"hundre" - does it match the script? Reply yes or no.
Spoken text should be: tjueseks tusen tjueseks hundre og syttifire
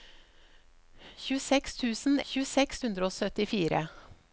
yes